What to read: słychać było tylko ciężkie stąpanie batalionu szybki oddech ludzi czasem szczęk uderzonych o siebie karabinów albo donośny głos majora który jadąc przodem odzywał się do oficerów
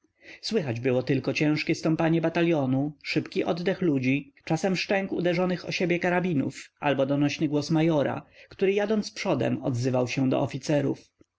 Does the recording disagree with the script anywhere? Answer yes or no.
no